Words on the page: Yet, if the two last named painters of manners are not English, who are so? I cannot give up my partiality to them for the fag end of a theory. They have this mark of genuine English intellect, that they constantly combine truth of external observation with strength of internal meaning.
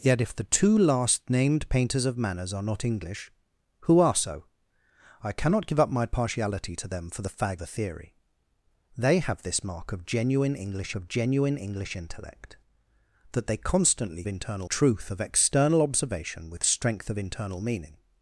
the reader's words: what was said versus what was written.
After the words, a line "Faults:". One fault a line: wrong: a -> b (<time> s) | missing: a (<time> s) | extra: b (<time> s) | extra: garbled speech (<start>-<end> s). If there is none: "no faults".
Yet, if the two last named painters of manners are not English, who are so? I cannot give up my partiality to them for the fag a theory. They have this mark of genuine English of genuine English intellect, that they constantly internal truth of external observation with strength of internal meaning.
Faults:
missing: end of (7.6 s)
extra: of genuine English (10.9 s)
wrong: combine -> internal (14.3 s)